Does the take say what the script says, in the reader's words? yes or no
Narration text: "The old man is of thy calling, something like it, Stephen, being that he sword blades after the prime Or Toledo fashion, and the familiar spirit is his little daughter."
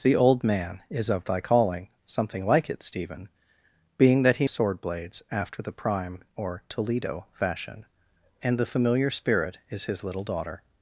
yes